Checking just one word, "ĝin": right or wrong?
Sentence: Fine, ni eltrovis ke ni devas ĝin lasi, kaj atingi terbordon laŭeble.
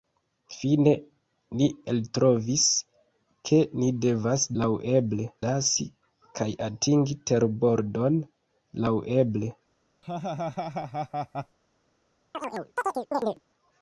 wrong